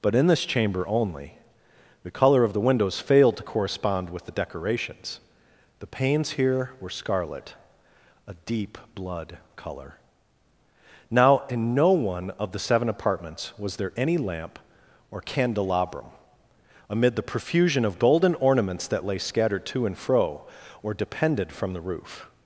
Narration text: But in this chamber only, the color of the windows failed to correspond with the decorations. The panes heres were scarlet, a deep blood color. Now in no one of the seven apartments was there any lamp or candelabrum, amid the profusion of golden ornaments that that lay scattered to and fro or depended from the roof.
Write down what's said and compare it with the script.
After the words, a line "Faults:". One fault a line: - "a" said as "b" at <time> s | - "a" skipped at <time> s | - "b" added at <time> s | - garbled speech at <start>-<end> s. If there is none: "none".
But in this chamber only, the color of the windows failed to correspond with the decorations. The panes here were scarlet, a deep blood color. Now in no one of the seven apartments was there any lamp or candelabrum, amid the profusion of golden ornaments that lay scattered to and fro or depended from the roof.
Faults:
- "heres" said as "here" at 6.3 s
- "that" skipped at 19.1 s